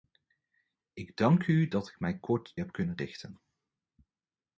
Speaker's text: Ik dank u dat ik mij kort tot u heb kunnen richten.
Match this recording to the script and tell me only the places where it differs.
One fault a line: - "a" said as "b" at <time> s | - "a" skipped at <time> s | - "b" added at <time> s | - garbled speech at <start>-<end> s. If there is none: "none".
- "tot u" skipped at 2.6 s